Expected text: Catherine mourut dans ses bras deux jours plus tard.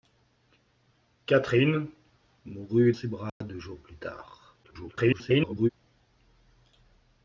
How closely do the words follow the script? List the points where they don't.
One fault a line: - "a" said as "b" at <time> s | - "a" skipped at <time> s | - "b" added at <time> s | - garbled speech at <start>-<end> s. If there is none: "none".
- "dans" skipped at 2.9 s
- garbled speech at 4.6-5.7 s